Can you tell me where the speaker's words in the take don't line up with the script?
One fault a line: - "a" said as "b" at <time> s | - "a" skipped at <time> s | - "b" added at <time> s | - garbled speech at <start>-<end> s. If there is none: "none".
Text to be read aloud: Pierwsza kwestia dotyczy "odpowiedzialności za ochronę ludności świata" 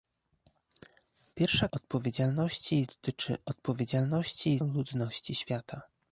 - "kwestia" said as "odpowiedzialności" at 1.7 s
- "za ochronę" skipped at 4.6 s